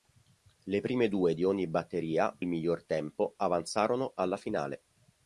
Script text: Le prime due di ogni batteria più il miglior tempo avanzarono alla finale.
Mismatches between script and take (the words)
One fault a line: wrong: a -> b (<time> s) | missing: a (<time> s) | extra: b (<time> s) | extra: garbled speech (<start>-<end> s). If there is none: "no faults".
missing: più (2.4 s)